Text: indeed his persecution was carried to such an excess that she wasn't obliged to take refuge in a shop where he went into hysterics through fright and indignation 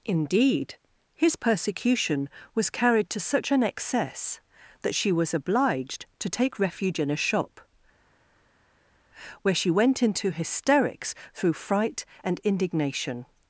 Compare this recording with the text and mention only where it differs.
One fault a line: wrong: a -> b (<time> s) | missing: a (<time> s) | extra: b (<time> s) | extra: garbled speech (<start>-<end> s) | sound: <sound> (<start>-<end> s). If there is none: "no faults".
wrong: wasn't -> was (5.1 s)
wrong: he -> she (9.5 s)